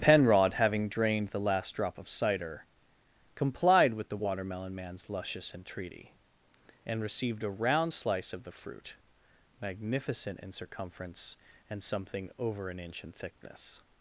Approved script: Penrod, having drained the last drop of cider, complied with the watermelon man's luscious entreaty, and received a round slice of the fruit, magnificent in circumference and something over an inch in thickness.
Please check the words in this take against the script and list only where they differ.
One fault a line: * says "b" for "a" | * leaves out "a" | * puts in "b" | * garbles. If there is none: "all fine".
all fine